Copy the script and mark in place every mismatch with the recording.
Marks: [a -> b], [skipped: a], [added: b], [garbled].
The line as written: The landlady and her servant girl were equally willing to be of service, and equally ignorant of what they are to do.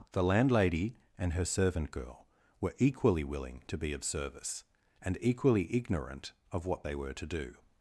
The landlady and her servant girl were equally willing to be of service, and equally ignorant of what they [are -> were] to do.